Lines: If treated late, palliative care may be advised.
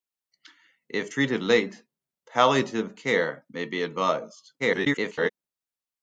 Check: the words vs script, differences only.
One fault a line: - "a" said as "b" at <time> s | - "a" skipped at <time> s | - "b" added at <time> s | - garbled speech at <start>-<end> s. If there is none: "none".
- garbled speech at 4.6-5.3 s